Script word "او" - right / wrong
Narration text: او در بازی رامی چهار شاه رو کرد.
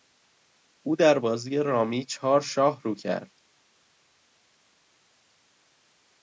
right